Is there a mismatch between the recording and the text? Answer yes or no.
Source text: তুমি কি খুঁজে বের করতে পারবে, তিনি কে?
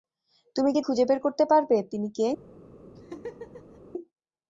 no